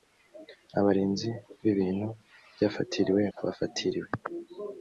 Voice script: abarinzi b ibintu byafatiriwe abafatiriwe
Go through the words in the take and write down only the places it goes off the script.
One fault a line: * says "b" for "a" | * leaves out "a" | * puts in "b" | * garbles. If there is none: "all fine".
all fine